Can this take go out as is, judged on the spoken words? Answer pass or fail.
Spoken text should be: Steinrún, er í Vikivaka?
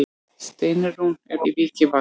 pass